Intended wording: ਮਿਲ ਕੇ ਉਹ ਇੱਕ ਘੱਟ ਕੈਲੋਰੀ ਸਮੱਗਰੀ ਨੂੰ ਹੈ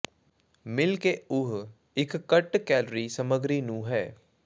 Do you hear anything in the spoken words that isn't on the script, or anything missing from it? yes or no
no